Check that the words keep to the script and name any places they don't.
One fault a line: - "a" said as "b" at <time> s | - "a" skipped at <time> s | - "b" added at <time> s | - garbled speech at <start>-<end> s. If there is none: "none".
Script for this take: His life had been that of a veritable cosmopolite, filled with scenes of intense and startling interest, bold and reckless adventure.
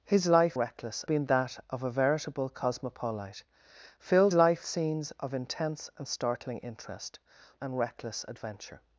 - "had" said as "reckless" at 0.6 s
- "with" said as "life" at 4.3 s
- "bold" skipped at 7.2 s